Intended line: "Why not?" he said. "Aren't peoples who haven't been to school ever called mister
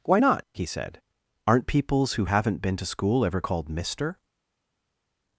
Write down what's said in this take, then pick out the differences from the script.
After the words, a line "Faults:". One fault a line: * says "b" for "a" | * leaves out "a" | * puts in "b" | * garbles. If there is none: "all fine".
"Why not?" he said. "Aren't peoples who haven't been to school ever called mister
Faults:
all fine